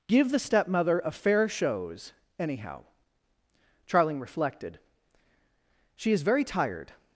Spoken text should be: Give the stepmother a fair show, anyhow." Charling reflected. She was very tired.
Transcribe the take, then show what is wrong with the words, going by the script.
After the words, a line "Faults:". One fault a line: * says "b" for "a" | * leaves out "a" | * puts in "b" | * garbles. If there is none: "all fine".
Give the stepmother a fair shows, anyhow." Charling reflected. She is very tired.
Faults:
* says "shows" for "show"
* says "is" for "was"